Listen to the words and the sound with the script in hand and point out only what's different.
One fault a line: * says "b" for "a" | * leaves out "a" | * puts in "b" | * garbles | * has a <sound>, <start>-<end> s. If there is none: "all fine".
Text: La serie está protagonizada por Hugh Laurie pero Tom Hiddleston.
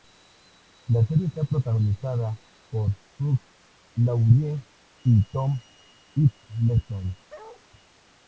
* says "y" for "pero"
* has a bark, 7.3-7.6 s